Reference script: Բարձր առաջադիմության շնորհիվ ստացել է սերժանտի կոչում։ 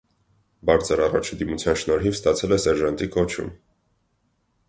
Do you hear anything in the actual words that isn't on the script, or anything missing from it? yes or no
no